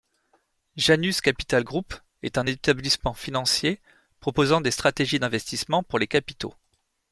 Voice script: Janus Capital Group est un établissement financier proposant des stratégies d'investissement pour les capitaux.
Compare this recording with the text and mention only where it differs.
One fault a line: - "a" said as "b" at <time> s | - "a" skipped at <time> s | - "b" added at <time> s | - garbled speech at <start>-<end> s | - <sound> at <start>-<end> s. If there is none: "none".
none